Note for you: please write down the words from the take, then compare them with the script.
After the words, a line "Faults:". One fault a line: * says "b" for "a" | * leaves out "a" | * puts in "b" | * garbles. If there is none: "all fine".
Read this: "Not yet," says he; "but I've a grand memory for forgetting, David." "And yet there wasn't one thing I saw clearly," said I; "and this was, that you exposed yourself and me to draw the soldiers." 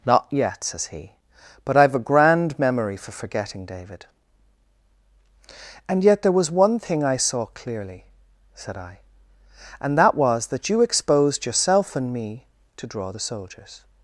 "Not yet," says he; "but I've a grand memory for forgetting, David." "And yet there was one thing I saw clearly," said I; "and that was, that you exposed yourself and me to draw the soldiers."
Faults:
* says "was" for "wasn't"
* says "that" for "this"